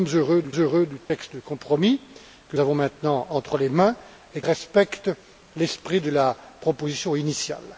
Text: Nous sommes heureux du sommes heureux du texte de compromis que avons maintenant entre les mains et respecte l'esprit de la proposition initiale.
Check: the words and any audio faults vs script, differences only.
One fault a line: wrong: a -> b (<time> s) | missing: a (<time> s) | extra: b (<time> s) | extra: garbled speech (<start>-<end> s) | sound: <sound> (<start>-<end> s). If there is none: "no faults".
sound: dropout (1.0-1.1 s)